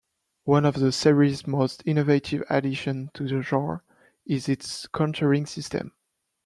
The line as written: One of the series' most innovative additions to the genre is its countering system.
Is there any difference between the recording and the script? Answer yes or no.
no